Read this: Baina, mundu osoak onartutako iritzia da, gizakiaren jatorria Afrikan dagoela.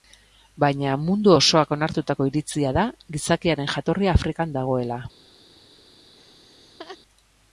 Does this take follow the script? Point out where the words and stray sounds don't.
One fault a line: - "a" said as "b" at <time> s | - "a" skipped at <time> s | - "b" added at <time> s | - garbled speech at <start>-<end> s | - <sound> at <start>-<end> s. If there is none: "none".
- laugh at 6.2-7.0 s